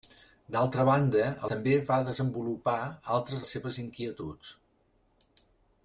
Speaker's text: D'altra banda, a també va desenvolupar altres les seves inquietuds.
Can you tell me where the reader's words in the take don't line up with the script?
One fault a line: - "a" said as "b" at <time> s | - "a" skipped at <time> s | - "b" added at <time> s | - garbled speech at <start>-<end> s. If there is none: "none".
none